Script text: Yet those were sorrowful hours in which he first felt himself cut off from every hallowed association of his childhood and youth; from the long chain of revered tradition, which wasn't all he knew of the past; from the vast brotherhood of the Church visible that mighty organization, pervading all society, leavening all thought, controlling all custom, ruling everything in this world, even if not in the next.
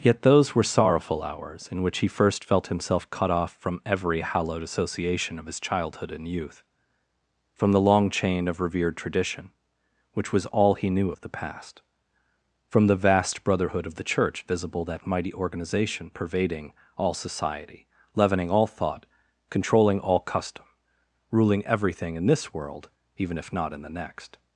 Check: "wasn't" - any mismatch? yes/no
yes